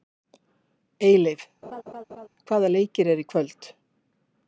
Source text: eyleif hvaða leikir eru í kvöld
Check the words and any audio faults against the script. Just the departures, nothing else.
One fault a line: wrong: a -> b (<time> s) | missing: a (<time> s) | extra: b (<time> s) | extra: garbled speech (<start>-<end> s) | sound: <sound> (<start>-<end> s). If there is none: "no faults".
sound: laugh (1.6-2.3 s)